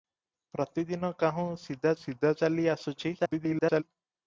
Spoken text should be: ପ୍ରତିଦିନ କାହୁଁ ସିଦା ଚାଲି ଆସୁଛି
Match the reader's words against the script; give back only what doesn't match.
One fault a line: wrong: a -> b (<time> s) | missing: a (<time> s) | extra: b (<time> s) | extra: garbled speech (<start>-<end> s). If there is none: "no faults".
extra: ସିଦା (2.0 s)
extra: garbled speech (3.2-3.8 s)